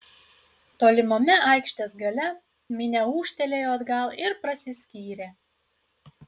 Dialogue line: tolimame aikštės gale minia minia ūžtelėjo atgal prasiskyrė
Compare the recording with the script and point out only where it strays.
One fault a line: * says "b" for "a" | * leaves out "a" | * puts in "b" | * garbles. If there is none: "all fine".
* leaves out "minia"
* puts in "ir"